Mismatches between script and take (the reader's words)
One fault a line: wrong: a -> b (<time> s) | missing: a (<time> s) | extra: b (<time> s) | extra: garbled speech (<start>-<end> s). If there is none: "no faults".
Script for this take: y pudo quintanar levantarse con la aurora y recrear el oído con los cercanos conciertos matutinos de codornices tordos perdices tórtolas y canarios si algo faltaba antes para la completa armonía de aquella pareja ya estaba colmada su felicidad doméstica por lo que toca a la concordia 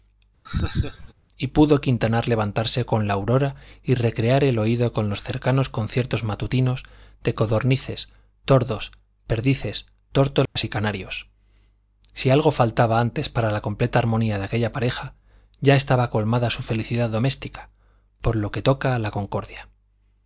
no faults